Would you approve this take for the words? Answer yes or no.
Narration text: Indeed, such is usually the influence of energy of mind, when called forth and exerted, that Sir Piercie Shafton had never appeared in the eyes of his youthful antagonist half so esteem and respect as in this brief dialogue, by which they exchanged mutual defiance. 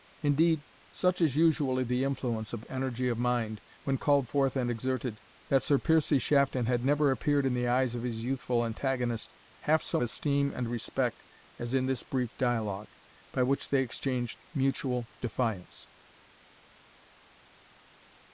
yes